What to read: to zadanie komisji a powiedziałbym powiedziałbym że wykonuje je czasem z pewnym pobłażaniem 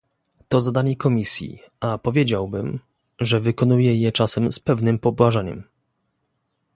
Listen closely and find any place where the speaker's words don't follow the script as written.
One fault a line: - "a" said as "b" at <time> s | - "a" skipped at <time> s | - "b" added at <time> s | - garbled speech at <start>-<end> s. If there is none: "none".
- "powiedziałbym" skipped at 2.8 s